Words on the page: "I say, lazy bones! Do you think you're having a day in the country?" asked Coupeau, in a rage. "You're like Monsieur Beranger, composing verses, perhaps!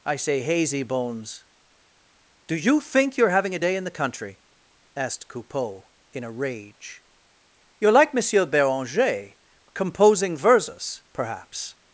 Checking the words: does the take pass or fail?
fail